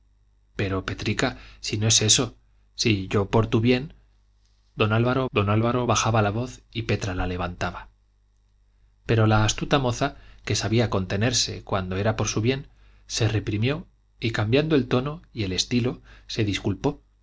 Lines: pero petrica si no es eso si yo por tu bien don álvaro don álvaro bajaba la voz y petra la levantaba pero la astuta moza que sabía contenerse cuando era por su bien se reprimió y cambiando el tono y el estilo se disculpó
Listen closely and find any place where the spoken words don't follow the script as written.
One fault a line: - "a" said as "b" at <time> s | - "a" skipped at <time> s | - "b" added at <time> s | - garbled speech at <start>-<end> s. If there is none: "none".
none